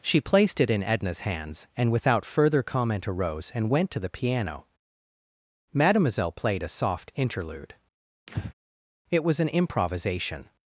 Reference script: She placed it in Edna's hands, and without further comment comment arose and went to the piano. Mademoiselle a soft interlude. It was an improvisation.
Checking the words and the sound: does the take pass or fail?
fail